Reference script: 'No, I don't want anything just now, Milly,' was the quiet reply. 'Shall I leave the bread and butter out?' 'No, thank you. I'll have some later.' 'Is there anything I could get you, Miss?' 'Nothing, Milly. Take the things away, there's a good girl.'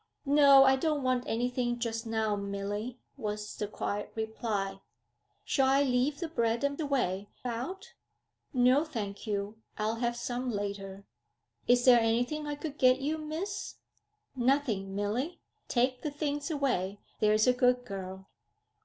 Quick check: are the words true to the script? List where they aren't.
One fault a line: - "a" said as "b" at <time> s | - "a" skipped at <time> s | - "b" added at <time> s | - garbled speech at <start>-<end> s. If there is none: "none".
- "butter" said as "away" at 6.8 s